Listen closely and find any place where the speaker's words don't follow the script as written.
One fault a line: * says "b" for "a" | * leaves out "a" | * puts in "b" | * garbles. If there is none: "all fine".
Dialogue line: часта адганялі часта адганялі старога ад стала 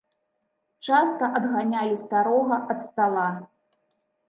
* leaves out "часта адганялі"